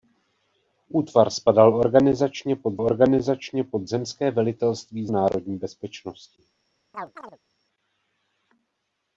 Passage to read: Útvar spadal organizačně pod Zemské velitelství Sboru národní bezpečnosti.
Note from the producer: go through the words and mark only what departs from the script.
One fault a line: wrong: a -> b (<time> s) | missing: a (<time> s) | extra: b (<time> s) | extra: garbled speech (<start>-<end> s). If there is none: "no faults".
extra: organizačně pod (2.8 s)
missing: Sboru (5.1 s)